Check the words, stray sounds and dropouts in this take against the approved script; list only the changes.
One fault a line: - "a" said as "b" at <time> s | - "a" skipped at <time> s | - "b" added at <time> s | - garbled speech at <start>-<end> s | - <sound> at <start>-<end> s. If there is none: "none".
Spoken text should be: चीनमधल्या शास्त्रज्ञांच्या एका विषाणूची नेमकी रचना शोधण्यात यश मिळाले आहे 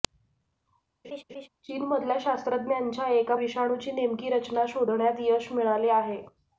- laugh at 1.0-1.5 s